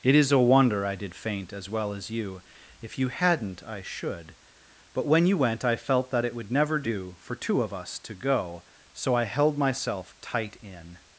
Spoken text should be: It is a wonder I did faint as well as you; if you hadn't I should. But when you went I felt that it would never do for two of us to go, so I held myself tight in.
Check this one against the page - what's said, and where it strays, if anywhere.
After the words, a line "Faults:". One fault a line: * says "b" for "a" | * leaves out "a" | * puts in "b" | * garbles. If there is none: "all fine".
It is a wonder I did faint as well as you; if you hadn't I should. But when you went I felt that it would never do for two of us to go, so I held myself tight in.
Faults:
all fine